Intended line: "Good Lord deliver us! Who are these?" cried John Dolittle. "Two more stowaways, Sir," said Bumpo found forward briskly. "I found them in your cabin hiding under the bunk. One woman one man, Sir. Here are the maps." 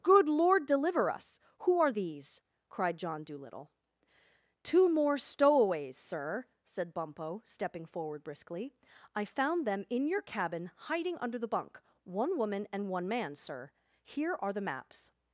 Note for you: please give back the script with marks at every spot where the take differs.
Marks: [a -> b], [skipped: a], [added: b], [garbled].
"Good Lord deliver us! Who are these?" cried John Dolittle. "Two more stowaways, Sir," said Bumpo [found -> stepping] forward briskly. "I found them in your cabin hiding under the bunk. One woman [added: and] one man, Sir. Here are the maps."